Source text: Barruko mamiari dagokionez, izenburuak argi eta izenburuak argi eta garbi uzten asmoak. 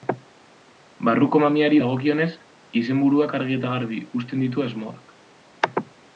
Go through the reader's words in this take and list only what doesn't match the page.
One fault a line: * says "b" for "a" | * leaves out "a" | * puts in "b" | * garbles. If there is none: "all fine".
* leaves out "izenburuak argi eta"
* puts in "ditu"